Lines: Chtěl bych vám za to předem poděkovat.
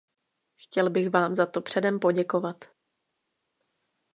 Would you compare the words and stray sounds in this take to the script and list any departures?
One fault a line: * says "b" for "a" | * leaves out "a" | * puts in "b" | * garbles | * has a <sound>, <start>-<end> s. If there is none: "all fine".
all fine